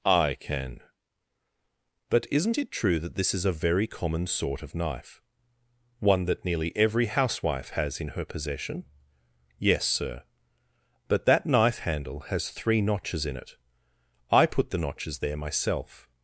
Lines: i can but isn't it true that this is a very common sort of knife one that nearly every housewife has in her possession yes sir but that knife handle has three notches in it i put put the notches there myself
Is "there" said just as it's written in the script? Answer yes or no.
yes